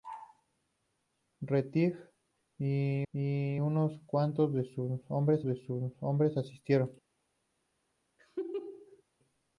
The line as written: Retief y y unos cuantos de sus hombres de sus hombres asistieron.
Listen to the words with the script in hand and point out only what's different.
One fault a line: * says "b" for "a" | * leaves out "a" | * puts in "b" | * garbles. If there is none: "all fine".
all fine